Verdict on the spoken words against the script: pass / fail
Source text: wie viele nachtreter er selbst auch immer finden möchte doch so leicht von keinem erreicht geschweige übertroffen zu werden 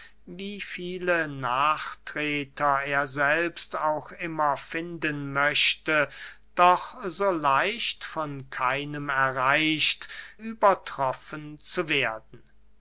fail